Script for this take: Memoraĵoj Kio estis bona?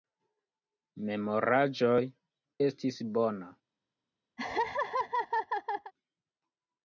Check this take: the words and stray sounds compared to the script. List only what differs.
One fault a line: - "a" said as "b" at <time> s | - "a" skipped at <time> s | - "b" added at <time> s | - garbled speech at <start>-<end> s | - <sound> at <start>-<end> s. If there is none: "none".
- "Kio" skipped at 2.0 s
- laugh at 4.4-5.9 s